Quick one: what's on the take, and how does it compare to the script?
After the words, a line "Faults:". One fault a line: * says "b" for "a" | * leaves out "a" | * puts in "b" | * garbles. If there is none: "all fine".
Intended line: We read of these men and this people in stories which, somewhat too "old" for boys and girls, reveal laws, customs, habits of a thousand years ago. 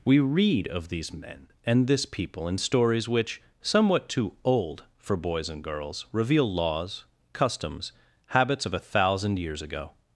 We read of these men and this people in stories which, somewhat too "old" for boys and girls, reveal laws, customs, habits of a thousand years ago.
Faults:
all fine